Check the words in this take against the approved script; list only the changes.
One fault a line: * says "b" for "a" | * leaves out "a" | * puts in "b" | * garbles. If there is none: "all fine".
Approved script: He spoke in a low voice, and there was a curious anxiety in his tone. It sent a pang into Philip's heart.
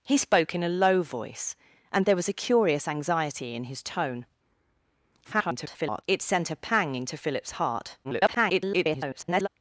* garbles
* garbles